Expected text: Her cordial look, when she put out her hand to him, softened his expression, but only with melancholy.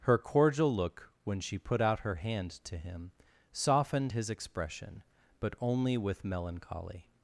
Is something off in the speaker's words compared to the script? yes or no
no